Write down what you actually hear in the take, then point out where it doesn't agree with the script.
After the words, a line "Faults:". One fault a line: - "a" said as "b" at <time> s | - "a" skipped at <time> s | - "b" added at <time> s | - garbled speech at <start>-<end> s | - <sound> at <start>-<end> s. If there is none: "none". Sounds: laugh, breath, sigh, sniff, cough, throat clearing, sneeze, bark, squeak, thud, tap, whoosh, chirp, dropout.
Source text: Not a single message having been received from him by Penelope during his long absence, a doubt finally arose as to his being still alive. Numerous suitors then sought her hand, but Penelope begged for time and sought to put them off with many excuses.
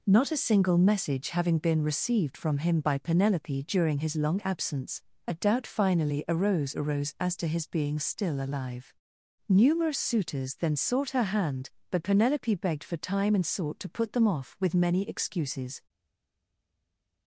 Not a single message having been received from him by Penelope during his long absence, a doubt finally arose arose as to his being still alive. Numerous suitors then sought her hand, but Penelope begged for time and sought to put them off with many excuses.
Faults:
- "arose" added at 6.8 s